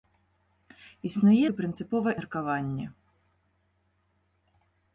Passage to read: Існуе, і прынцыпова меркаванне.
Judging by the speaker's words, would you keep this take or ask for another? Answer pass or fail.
pass